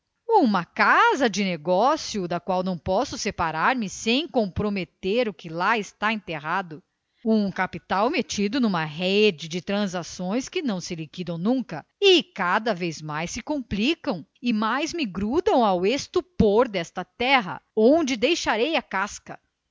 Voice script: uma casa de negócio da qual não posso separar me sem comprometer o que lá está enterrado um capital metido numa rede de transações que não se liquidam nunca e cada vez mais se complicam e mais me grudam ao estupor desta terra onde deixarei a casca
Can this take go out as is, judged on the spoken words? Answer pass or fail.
pass